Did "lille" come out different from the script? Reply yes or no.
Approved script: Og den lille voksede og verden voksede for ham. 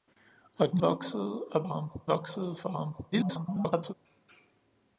yes